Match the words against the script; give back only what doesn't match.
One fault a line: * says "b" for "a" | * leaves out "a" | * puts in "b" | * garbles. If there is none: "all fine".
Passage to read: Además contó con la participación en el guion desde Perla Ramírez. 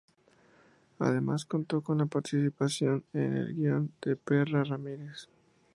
* says "de" for "desde"